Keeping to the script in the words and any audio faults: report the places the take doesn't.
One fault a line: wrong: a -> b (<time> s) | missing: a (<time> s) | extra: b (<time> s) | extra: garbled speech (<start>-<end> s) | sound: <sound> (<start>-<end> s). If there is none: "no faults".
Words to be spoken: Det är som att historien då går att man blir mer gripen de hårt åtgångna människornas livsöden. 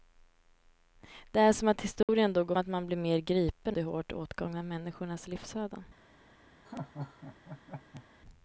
sound: dropout (2.0-2.1 s)
sound: laugh (6.6-8.0 s)